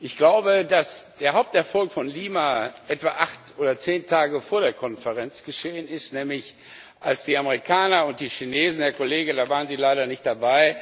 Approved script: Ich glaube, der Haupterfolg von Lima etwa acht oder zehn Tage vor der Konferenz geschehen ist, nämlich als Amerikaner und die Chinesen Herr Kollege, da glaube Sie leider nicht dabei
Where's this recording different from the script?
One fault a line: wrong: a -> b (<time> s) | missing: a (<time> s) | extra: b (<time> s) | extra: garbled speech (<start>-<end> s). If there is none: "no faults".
extra: dass (0.7 s)
extra: die (7.2 s)
wrong: glaube -> waren (9.5 s)